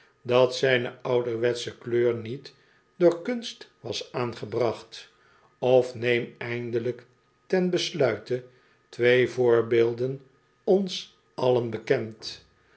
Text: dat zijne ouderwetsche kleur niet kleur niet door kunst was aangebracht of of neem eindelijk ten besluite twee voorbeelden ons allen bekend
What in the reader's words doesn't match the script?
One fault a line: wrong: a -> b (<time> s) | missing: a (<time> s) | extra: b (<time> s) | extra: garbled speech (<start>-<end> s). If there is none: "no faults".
missing: kleur niet (2.5 s)
missing: of (6.0 s)